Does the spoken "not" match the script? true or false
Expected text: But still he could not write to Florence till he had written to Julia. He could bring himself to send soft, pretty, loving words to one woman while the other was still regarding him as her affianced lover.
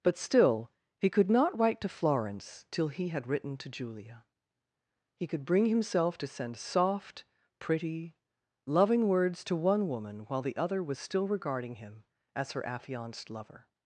true